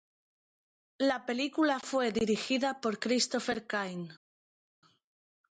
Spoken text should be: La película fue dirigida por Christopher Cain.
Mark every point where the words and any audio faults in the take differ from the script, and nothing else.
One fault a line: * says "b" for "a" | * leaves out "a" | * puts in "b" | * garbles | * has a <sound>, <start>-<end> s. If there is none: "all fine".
all fine